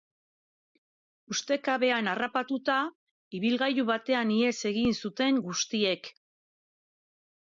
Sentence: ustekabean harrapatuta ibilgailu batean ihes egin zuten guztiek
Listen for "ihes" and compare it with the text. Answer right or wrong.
right